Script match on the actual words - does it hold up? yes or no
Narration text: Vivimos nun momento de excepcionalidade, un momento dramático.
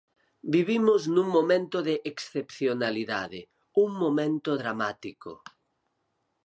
yes